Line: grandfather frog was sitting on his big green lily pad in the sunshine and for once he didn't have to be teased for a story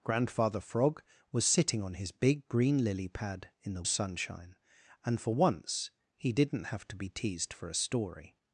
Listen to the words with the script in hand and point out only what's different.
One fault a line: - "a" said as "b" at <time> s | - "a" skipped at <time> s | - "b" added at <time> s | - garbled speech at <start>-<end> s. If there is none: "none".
none